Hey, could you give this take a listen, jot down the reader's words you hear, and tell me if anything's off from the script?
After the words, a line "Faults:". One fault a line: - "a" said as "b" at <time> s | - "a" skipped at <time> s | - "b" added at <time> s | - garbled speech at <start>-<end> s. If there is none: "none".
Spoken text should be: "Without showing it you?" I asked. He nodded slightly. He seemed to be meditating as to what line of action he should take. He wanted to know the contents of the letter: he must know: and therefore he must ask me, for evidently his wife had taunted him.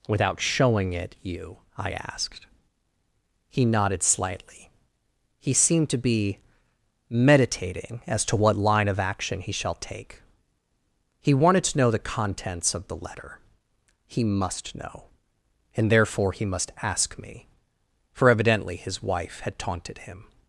"Without showing it you?" I asked. He nodded slightly. He seemed to be meditating as to what line of action he shall take. He wanted to know the contents of the letter: he must know: and therefore he must ask me, for evidently his wife had taunted him.
Faults:
- "should" said as "shall" at 9.5 s